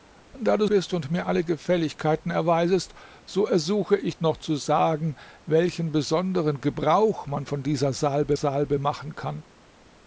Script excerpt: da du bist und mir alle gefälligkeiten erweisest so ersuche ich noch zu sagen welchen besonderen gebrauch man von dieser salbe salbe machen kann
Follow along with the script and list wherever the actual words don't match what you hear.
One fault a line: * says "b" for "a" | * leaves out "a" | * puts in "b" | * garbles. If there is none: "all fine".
all fine